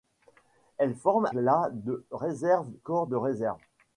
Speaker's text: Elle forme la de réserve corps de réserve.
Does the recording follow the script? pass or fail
pass